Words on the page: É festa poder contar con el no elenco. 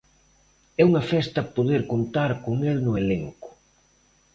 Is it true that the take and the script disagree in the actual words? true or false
true